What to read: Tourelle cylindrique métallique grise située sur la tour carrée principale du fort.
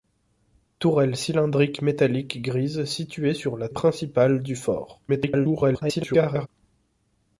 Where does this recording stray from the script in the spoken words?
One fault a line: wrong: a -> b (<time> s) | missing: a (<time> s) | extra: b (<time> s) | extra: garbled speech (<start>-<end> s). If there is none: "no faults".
missing: tour carrée (3.7 s)
extra: garbled speech (5.1-6.5 s)